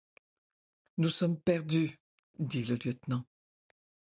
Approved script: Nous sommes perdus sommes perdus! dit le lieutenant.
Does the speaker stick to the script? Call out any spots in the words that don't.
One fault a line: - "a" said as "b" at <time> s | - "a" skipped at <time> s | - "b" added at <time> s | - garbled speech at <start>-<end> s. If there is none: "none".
- "sommes perdus" skipped at 2.0 s